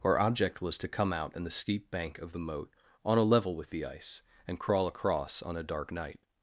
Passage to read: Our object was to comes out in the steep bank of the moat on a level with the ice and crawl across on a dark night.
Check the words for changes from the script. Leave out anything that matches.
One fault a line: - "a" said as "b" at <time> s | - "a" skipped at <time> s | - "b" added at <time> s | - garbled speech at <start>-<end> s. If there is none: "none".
- "comes" said as "come" at 0.9 s